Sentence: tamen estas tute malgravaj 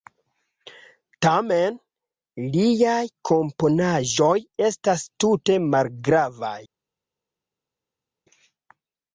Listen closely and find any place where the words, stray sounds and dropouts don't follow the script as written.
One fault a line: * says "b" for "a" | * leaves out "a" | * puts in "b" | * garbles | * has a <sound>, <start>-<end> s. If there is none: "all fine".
* puts in "liaj komponaĵoj"